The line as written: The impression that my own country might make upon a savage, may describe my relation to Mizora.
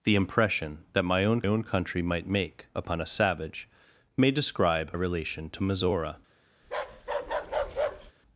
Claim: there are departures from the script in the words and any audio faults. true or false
true